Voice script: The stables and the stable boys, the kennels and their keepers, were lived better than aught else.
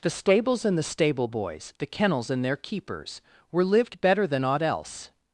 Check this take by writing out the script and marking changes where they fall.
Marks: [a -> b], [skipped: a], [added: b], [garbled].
The stables and the stable boys, the kennels and their keepers, were lived better than aught else.